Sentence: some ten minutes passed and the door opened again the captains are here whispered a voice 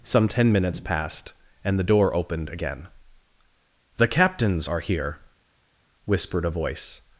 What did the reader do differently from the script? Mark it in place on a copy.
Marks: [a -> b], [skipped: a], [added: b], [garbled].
some ten minutes passed and the door opened again the captains are here whispered a voice